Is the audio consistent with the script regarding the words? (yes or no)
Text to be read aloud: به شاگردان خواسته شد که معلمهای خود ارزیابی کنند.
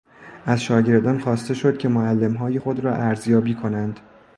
no